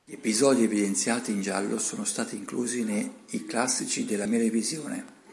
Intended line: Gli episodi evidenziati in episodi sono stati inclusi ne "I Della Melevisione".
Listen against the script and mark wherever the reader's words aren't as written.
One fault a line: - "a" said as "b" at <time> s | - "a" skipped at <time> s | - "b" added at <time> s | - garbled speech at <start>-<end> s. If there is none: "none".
- "episodi" said as "giallo" at 1.4 s
- "Classici" added at 3.5 s